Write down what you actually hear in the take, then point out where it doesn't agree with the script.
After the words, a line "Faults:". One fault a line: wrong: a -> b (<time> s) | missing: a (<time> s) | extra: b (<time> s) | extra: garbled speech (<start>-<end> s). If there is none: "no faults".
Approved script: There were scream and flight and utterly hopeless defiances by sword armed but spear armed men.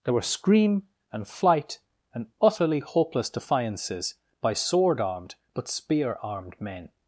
There were scream and flight and utterly hopeless defiances by sword armed but spear armed men.
Faults:
no faults